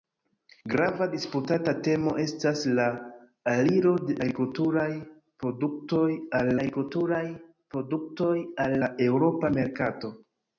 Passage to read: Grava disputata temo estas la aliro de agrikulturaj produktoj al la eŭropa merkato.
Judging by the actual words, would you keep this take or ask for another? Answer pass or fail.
fail